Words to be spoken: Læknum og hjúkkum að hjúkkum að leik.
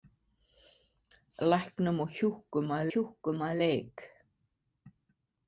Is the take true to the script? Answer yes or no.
yes